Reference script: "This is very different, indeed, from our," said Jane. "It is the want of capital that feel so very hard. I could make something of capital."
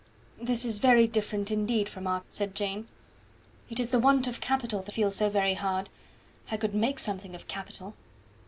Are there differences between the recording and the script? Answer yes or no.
no